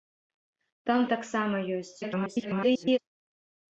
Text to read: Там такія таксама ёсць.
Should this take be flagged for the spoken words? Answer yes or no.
yes